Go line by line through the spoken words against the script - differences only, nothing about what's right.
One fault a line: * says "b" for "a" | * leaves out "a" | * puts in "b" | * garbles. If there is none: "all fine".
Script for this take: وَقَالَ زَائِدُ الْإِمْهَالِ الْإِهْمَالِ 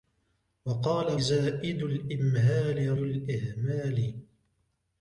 all fine